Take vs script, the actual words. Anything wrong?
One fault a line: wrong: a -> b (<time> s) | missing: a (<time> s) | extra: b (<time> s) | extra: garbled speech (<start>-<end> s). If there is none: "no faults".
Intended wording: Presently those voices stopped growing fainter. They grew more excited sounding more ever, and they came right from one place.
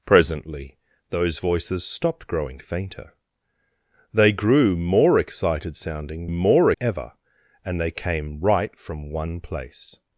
no faults